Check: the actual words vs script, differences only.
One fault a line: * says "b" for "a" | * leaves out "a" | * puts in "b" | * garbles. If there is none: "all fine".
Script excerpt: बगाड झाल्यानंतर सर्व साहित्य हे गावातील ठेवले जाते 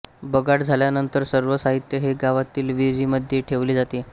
* puts in "विहिरीमध्ये"